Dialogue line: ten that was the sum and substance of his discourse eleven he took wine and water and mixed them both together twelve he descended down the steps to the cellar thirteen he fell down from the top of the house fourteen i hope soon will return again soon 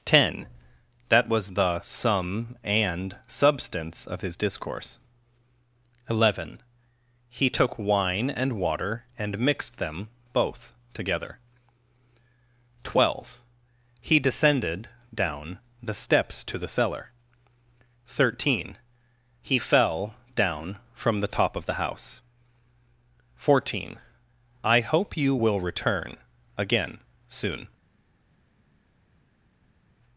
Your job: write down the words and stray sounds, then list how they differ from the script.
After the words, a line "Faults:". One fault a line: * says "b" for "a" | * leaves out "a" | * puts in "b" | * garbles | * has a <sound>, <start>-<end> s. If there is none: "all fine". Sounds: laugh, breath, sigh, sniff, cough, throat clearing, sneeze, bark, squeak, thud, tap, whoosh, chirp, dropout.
ten that was the sum and substance of his discourse eleven he took wine and water and mixed them both together twelve he descended down the steps to the cellar thirteen he fell down from the top of the house fourteen i hope you will return again soon
Faults:
* says "you" for "soon"